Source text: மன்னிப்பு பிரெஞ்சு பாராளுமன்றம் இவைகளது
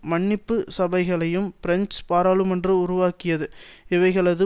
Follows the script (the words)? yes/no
no